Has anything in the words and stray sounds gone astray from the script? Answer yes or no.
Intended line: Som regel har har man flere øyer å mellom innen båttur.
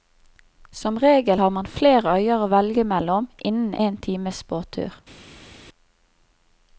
yes